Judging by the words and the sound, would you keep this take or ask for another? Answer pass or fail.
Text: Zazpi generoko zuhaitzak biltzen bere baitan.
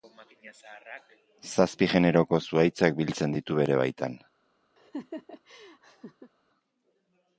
fail